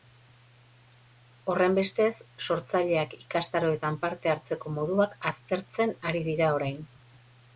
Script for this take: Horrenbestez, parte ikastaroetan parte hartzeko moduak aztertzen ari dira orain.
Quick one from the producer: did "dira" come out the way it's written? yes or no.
yes